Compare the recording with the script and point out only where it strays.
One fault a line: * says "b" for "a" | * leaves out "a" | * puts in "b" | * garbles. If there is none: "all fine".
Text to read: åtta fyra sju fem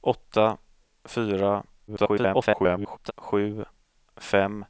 * garbles